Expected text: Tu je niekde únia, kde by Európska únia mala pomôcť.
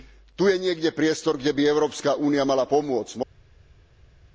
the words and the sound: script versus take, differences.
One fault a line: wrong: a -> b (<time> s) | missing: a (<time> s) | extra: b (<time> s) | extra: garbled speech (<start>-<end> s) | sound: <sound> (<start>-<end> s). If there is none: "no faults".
wrong: únia -> priestor (0.9 s)